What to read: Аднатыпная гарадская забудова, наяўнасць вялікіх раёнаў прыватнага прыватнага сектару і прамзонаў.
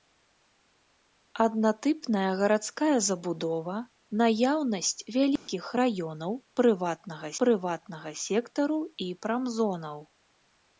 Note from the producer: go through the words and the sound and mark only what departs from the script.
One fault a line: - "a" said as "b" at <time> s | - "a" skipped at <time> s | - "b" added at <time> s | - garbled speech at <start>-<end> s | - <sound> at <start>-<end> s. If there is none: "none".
- dropout at 5.4-5.5 s